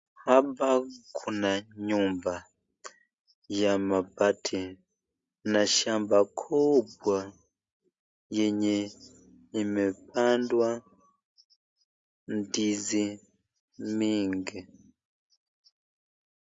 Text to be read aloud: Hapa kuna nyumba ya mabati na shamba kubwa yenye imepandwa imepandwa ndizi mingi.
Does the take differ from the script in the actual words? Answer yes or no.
yes